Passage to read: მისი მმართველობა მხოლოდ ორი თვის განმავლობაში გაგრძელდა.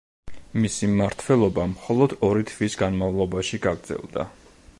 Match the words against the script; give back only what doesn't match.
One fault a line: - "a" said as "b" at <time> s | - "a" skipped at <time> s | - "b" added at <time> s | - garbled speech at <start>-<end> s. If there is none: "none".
none